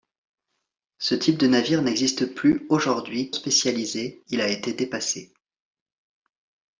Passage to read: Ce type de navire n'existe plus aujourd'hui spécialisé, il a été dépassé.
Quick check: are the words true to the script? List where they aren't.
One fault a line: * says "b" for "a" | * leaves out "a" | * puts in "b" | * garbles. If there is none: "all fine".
all fine